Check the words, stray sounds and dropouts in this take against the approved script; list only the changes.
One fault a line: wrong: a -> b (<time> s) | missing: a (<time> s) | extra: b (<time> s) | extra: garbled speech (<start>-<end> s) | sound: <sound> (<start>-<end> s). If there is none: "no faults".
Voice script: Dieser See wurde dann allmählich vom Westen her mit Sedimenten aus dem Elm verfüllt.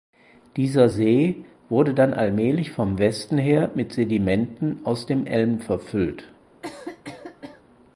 sound: cough (6.6-7.6 s)